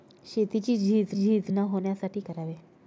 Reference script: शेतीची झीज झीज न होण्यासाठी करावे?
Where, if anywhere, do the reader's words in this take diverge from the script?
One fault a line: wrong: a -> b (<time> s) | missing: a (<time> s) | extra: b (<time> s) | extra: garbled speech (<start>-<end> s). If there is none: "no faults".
no faults